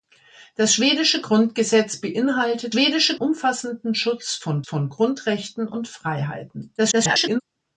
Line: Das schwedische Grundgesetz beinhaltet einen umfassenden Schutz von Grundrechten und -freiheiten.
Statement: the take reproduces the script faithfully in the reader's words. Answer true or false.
false